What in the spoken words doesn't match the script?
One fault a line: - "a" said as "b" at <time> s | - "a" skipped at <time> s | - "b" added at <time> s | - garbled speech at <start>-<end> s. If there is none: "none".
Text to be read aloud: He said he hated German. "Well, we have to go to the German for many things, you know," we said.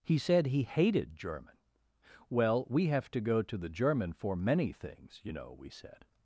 none